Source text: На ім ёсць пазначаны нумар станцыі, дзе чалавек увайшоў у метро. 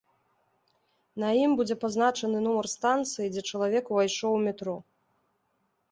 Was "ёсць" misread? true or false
true